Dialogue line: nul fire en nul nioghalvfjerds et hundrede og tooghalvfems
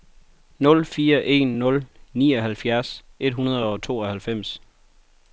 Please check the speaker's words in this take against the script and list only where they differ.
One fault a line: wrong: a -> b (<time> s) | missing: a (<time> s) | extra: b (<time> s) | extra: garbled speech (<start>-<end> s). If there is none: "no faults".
no faults